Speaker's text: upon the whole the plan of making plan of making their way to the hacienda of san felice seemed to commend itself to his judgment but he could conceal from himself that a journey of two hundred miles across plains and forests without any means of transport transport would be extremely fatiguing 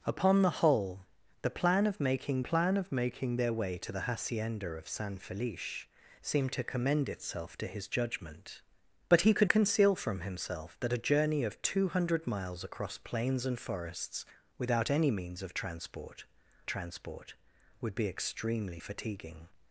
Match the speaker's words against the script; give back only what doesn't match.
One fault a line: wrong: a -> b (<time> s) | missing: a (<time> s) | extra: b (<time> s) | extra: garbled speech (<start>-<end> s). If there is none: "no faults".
no faults